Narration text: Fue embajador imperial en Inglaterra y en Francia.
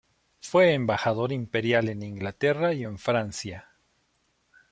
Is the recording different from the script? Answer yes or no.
no